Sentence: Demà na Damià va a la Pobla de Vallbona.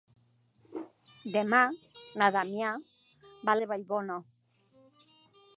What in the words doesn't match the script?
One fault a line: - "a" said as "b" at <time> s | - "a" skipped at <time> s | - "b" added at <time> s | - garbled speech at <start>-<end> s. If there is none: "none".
- "la Pobla" skipped at 3.6 s